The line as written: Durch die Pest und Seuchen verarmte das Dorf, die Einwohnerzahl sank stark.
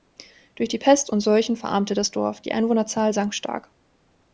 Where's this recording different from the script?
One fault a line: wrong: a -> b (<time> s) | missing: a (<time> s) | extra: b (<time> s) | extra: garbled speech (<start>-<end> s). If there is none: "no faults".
no faults